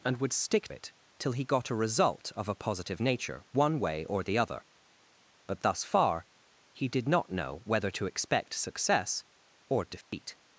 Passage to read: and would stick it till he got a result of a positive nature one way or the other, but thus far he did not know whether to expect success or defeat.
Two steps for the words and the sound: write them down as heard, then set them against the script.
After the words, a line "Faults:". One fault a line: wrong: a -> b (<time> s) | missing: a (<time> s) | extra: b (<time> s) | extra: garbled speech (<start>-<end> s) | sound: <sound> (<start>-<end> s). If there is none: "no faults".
and would stick it till he got a result of a positive nature one way or the other, but thus far he did not know whether to expect success or defeat.
Faults:
sound: dropout (10.0-10.1 s)